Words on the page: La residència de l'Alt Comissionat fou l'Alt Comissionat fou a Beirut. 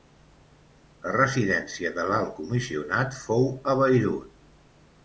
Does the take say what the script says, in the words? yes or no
no